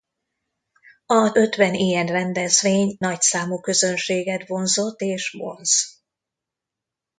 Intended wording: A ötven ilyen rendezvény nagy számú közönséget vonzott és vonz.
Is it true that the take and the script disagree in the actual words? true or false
false